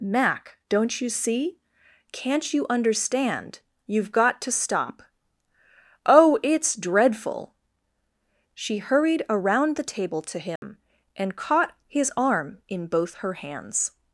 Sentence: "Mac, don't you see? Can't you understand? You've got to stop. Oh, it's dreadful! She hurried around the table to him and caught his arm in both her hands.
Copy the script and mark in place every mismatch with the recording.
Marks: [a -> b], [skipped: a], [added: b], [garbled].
"Mac, don't you see? Can't you understand? You've got to stop. Oh, it's dreadful! She hurried around the table to him and caught his arm in both her hands.